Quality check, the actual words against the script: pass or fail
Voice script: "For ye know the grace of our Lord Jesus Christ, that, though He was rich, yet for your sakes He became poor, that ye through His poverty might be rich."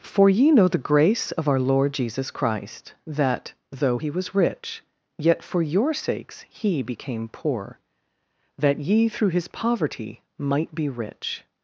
pass